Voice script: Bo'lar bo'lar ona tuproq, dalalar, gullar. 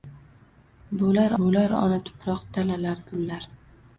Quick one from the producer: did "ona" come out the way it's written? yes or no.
yes